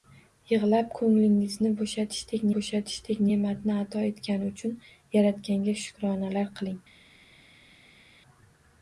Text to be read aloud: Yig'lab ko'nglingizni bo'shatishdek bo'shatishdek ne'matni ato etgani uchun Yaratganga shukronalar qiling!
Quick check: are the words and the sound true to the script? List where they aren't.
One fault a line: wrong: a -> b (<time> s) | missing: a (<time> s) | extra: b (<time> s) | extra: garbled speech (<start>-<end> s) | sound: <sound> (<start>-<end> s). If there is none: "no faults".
no faults